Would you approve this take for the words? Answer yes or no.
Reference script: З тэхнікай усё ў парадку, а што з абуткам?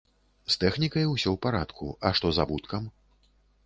yes